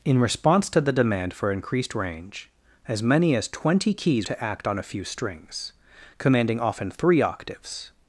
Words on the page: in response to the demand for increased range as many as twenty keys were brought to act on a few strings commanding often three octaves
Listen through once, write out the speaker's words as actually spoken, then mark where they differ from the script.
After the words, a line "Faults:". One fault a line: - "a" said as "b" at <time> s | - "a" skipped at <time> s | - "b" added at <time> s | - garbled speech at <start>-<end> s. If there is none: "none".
in response to the demand for increased range as many as twenty keys to act on a few strings commanding often three octaves
Faults:
- "were brought" skipped at 4.3 s